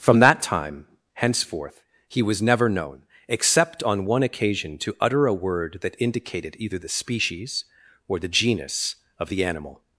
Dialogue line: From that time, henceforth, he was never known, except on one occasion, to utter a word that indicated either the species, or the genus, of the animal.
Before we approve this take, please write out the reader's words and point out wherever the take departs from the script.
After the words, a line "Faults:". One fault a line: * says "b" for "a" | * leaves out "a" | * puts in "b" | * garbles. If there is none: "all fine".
From that time, henceforth, he was never known, except on one occasion, to utter a word that indicated either the species, or the genus, of the animal.
Faults:
all fine